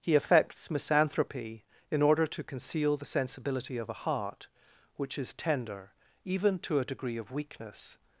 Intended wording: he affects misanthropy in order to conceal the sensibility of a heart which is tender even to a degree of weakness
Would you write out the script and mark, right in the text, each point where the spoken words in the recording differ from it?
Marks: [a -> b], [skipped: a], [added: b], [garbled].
he affects misanthropy in order to conceal the sensibility of a heart which is tender even to a degree of weakness